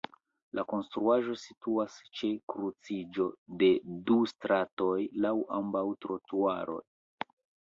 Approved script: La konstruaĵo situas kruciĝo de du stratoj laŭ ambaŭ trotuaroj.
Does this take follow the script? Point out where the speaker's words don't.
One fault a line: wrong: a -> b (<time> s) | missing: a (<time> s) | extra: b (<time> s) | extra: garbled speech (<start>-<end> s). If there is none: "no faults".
extra: ĉe (2.2 s)